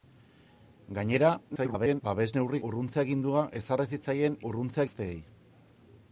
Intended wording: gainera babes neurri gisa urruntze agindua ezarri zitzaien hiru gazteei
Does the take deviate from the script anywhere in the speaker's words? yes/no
yes